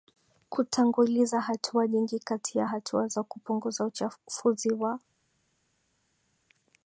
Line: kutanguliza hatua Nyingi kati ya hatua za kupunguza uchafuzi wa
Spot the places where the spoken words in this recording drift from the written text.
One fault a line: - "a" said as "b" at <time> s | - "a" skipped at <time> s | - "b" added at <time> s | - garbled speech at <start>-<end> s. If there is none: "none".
none